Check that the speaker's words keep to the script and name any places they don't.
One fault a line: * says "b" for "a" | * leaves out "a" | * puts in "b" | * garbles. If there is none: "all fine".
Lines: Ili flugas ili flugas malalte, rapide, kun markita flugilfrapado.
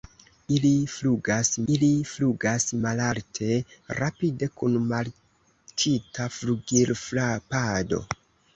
all fine